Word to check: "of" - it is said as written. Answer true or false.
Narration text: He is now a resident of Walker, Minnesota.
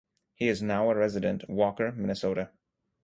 false